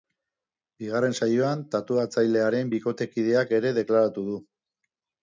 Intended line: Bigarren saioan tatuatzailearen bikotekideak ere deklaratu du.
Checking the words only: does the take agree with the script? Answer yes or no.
yes